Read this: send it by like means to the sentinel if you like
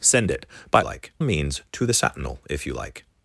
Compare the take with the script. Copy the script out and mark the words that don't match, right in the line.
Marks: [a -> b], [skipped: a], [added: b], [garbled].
send it by like means to the sentinel if you like